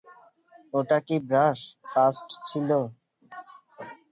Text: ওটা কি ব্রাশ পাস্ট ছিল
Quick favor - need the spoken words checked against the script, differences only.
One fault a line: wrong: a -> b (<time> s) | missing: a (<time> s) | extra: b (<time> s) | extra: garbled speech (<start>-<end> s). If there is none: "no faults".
no faults